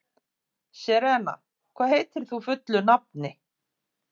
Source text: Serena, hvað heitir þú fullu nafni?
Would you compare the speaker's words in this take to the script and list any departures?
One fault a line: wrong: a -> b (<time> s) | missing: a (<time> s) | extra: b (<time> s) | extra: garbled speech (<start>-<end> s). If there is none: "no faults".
no faults